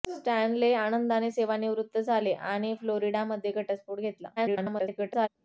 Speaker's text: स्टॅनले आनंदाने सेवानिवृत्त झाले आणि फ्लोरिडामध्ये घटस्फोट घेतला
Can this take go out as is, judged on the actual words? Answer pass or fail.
fail